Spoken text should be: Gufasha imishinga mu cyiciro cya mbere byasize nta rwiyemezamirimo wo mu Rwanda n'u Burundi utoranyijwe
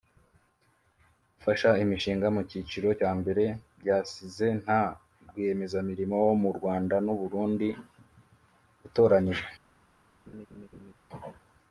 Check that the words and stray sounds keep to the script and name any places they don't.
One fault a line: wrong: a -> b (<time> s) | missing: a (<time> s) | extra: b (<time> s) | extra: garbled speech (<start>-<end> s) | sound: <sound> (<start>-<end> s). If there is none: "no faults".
sound: laugh (10.3-10.9 s)